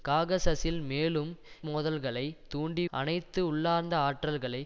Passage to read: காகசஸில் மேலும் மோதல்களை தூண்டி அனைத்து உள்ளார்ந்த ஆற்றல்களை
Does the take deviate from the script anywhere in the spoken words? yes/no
no